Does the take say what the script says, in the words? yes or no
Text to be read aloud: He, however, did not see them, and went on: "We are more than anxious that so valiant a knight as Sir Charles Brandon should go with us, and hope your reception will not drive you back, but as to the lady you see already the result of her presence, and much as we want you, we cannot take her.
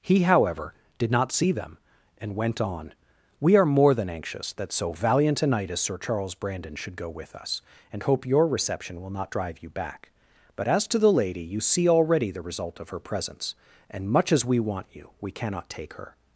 yes